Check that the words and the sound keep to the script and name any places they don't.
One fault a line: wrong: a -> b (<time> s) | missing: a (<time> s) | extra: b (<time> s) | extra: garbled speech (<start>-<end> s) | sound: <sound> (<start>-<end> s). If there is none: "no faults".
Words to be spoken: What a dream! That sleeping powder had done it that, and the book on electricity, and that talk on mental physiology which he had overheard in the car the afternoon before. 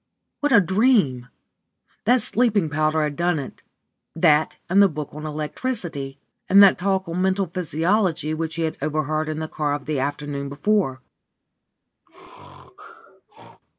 sound: sneeze (12.1-13.6 s)